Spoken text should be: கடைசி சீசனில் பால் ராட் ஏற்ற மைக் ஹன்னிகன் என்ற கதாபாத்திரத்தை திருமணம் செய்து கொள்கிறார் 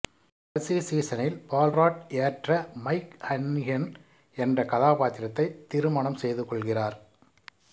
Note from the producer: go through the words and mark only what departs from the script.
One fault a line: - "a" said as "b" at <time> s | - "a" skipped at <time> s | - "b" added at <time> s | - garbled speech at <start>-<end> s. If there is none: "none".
none